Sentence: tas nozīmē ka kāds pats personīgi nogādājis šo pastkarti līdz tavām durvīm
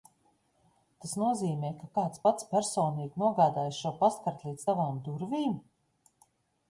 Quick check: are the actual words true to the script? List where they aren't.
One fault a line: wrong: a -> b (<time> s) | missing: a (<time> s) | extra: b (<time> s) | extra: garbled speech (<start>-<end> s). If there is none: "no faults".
no faults